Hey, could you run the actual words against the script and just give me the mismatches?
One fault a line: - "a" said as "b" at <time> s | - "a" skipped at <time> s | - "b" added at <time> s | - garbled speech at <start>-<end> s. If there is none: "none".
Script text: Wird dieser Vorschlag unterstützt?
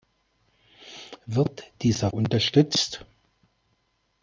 - "Vorschlag" skipped at 2.1 s